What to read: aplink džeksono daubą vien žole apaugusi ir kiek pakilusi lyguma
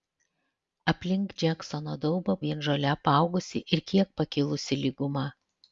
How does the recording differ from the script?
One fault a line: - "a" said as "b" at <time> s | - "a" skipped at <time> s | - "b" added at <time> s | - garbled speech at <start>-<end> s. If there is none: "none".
none